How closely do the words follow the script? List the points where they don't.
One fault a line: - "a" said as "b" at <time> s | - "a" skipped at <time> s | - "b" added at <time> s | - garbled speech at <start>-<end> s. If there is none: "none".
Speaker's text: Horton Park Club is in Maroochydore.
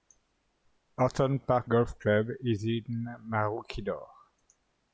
- "Golf" added at 1.7 s